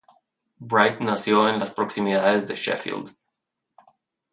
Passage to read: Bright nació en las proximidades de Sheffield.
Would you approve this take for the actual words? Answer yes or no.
yes